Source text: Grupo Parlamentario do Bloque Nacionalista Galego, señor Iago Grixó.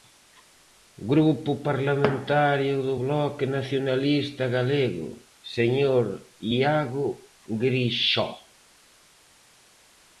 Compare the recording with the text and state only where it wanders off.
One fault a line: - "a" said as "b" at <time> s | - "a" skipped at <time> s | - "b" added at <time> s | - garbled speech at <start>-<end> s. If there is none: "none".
none